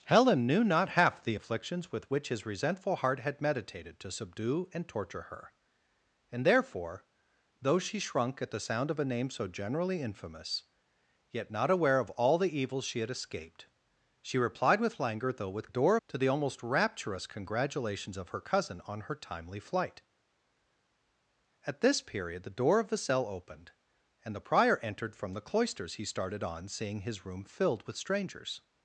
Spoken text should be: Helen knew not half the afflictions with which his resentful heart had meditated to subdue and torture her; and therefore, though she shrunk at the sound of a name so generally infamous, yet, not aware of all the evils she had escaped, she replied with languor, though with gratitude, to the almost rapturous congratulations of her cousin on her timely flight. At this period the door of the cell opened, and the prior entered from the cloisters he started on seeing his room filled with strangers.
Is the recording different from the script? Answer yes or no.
yes